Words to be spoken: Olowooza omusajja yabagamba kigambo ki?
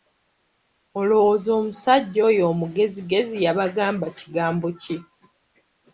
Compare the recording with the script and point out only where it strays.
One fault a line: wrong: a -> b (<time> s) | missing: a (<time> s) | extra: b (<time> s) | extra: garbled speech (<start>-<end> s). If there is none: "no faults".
extra: oyo omugezigezi (2.3 s)